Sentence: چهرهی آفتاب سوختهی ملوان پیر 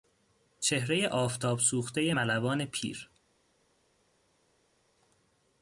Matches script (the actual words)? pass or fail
pass